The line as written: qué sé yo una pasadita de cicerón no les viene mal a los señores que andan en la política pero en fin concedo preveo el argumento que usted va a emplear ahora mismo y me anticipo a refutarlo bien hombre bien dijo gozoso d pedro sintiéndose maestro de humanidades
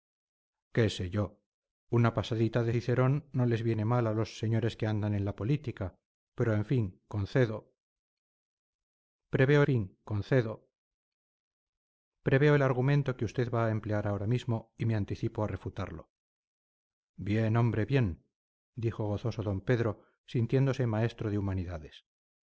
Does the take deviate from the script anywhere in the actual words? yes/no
yes